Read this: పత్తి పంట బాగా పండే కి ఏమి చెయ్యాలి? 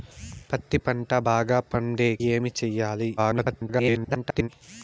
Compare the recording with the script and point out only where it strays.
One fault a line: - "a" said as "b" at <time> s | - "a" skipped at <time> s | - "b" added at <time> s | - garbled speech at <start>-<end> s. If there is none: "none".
- "కి" skipped at 2.2 s
- garbled speech at 3.2-4.5 s